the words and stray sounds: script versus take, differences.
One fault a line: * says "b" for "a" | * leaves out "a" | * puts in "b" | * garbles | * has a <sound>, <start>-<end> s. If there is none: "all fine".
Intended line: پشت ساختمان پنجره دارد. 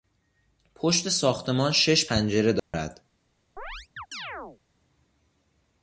* puts in "شش"
* has a dropout, 2.6-2.7 s
* has a chirp, 3.6-4.6 s